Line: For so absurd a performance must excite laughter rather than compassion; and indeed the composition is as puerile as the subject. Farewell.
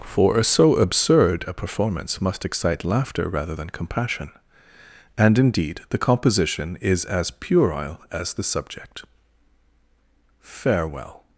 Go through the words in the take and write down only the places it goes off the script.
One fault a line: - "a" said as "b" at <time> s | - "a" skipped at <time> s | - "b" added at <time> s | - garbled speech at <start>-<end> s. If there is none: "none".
none